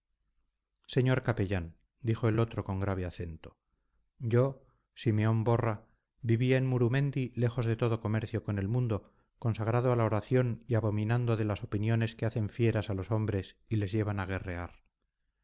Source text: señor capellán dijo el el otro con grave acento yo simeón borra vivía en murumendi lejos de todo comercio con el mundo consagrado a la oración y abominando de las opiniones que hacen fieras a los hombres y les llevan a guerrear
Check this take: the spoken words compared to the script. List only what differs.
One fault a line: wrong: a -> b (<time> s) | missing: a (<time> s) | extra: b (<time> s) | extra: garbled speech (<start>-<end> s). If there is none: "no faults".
no faults